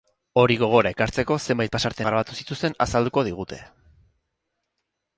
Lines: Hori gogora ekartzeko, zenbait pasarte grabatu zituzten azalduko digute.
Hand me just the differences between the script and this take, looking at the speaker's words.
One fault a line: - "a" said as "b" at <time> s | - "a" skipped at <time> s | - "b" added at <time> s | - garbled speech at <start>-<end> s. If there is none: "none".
none